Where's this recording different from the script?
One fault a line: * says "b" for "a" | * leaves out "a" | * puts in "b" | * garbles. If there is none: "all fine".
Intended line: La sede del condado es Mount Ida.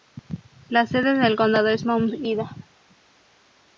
all fine